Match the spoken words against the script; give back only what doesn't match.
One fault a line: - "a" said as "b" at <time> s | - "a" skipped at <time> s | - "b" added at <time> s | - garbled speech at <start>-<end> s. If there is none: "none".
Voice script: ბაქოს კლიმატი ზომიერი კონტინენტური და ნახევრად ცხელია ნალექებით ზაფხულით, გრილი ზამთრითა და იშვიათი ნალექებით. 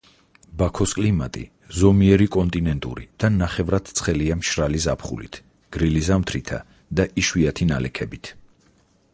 - "ნალექებით" said as "მშრალი" at 4.4 s